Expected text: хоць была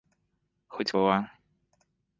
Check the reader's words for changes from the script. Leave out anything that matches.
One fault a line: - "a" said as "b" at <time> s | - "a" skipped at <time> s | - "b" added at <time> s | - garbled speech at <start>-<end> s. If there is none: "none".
none